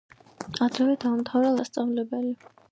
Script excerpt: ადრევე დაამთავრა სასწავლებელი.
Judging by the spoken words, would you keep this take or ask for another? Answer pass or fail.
pass